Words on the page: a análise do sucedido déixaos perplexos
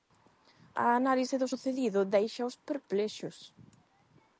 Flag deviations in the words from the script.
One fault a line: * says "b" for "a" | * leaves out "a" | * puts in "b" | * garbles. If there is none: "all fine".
all fine